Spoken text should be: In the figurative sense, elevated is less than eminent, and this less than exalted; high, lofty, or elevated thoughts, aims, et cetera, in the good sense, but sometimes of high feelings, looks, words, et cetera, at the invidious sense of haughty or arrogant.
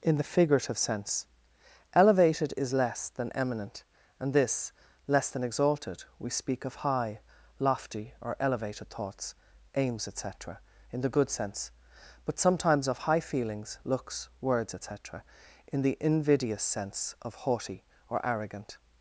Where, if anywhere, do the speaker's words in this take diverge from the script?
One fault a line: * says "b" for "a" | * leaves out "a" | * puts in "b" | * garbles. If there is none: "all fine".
* puts in "we speak of"
* says "in" for "at"